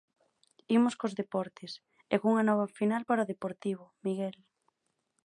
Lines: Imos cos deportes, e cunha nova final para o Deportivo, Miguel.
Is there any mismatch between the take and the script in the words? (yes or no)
no